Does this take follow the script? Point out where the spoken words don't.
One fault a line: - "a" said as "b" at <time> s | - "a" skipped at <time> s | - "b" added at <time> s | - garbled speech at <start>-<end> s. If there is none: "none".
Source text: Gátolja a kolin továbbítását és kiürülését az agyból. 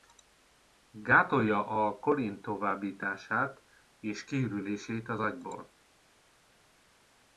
none